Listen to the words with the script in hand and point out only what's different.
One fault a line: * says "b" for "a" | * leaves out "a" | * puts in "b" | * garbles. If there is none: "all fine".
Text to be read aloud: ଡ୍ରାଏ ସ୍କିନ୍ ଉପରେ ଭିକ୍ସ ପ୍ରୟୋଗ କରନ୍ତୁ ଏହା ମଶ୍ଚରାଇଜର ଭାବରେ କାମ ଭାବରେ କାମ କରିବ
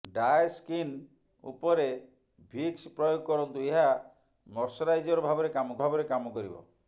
all fine